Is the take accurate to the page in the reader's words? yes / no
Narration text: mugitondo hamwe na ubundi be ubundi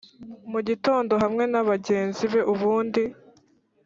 no